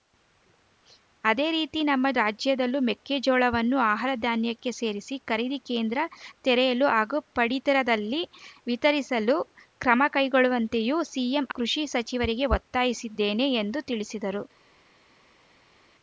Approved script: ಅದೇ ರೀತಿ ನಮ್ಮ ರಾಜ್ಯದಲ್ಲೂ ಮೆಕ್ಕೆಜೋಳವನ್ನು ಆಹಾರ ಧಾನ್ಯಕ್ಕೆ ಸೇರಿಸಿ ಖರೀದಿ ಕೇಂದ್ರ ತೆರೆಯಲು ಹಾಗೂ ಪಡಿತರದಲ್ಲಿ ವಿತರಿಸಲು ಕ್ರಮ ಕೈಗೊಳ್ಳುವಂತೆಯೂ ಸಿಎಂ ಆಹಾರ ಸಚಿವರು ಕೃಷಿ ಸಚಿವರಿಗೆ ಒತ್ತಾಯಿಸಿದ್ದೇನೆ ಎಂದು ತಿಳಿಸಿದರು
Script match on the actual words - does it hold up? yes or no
no